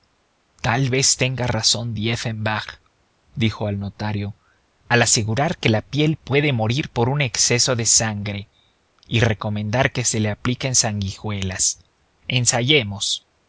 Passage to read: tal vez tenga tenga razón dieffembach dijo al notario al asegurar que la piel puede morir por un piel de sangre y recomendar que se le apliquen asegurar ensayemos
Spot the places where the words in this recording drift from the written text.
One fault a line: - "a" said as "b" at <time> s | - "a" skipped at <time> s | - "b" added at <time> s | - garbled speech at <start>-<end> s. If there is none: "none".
- "tenga" skipped at 1.4 s
- "piel" said as "exceso" at 7.2 s
- "asegurar" said as "sanguijuelas" at 10.7 s